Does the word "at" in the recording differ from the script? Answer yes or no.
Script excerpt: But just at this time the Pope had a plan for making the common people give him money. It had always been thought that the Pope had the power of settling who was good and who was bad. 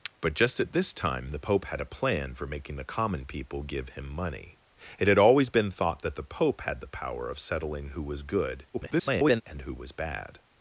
no